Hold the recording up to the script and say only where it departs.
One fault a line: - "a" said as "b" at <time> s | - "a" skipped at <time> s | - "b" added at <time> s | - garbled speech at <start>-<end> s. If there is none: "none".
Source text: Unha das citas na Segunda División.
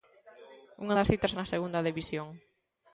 none